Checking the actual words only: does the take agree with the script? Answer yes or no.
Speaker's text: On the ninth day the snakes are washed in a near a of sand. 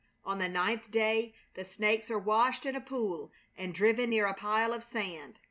no